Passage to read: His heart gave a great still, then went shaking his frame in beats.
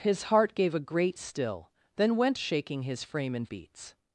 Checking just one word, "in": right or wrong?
right